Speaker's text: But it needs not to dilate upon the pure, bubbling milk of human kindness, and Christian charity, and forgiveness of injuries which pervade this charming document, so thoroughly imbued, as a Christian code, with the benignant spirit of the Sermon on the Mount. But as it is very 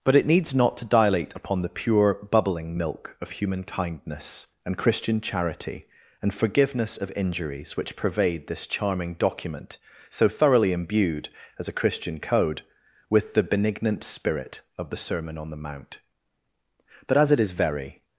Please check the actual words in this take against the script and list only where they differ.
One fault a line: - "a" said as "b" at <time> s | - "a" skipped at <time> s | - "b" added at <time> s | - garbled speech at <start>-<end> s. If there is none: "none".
none